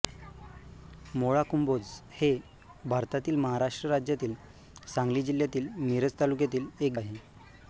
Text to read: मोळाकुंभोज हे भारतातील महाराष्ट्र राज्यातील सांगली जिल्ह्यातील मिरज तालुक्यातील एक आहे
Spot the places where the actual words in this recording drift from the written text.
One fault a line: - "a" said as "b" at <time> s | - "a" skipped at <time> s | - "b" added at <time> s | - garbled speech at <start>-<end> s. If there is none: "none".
none